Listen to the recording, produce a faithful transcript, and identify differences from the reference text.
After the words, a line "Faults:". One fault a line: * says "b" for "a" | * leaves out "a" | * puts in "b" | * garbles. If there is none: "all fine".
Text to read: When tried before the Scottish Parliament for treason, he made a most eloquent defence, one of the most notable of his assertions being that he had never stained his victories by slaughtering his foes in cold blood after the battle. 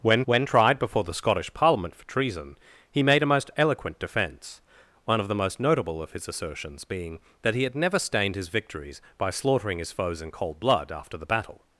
When when tried before the Scottish Parliament for treason, he made a most eloquent defence, one of the most notable of his assertions being that he had never stained his victories by slaughtering his foes in cold blood after the battle.
Faults:
* puts in "when"